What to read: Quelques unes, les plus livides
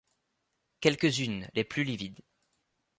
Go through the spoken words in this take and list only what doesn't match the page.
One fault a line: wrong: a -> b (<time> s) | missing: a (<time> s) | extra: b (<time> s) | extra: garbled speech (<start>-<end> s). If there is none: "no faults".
no faults